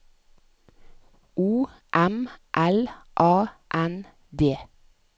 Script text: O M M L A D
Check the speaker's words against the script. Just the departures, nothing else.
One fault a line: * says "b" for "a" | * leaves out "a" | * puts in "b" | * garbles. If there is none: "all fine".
* leaves out "M"
* puts in "N"